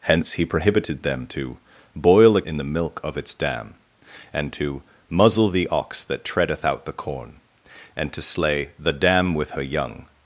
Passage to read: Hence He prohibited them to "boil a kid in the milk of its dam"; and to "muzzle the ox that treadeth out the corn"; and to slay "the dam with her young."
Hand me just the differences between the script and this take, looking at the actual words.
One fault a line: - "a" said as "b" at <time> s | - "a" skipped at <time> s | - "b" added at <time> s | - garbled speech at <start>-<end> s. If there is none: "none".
- "kid" skipped at 2.4 s